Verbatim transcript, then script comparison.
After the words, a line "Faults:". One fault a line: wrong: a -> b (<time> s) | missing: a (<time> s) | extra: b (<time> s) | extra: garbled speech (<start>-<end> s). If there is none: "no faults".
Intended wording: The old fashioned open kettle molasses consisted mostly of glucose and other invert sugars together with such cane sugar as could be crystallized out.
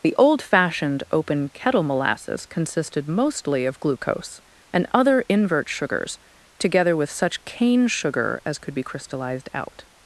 The old fashioned open kettle molasses consisted mostly of glucose and other invert sugars together with such cane sugar as could be crystallized out.
Faults:
no faults